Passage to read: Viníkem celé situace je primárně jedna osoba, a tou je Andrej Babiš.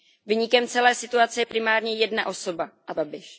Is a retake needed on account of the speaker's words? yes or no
yes